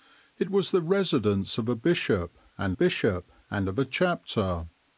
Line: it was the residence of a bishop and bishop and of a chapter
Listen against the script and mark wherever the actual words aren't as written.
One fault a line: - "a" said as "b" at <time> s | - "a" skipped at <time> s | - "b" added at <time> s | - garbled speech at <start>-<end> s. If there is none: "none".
none